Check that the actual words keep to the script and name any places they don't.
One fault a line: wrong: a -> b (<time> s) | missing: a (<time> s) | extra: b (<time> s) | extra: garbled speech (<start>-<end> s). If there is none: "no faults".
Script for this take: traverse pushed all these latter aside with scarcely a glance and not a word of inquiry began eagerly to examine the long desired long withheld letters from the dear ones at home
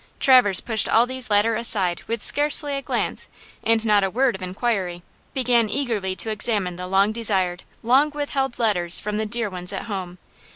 no faults